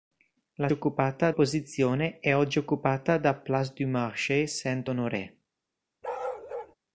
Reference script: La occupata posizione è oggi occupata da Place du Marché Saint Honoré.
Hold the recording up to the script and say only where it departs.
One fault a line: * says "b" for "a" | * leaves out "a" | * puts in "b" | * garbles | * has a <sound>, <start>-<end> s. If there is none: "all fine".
* has a bark, 6.0-6.8 s